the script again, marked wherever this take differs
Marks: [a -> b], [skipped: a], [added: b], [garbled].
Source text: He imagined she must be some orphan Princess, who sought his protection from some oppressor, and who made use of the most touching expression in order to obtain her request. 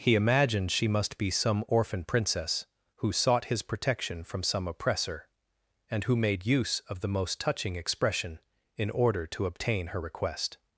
He imagined she must be some orphan Princess, who sought his protection from some oppressor, and who made use of the most touching expression in order to obtain her request.